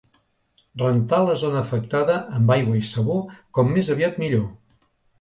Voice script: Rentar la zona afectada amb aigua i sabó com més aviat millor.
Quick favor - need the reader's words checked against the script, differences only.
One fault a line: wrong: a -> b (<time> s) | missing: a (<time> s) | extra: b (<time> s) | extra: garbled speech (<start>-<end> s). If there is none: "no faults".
no faults